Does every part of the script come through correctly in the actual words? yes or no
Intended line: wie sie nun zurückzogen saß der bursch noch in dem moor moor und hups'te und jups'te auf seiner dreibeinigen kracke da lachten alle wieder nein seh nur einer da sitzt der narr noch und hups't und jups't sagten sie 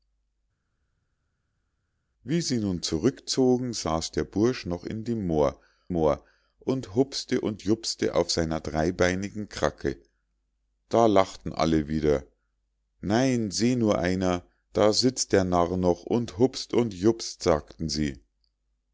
yes